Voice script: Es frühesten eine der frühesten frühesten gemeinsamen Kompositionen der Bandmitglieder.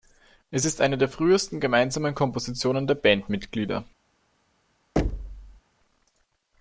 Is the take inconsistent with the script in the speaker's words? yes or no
yes